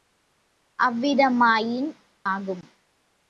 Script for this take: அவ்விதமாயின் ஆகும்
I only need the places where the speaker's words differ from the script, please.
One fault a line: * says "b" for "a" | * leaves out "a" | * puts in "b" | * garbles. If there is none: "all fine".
all fine